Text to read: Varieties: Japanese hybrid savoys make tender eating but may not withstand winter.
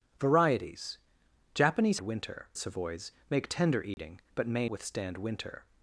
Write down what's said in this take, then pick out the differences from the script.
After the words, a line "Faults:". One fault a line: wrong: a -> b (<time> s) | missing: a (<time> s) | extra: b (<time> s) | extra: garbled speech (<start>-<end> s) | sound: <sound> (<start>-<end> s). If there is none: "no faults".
Varieties: Japanese winter savoys make tender eating but may withstand winter.
Faults:
wrong: hybrid -> winter (2.0 s)
sound: dropout (3.9-4.0 s)
missing: not (4.7 s)